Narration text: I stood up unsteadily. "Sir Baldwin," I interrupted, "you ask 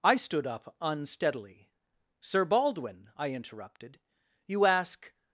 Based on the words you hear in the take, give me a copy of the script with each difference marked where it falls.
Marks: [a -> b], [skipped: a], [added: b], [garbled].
I stood up unsteadily. "Sir Baldwin," I interrupted, "you ask